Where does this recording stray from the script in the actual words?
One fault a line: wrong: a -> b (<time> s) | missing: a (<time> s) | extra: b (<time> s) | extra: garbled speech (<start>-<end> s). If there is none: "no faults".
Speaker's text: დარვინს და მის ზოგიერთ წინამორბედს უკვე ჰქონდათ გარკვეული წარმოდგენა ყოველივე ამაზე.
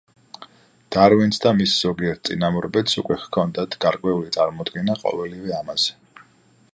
no faults